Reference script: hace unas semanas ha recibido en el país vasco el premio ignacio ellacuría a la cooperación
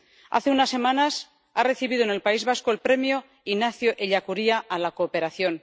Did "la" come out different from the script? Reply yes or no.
no